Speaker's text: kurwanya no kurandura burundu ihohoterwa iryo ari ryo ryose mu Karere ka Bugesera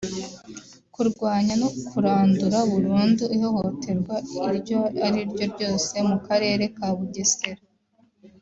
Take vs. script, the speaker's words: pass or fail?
pass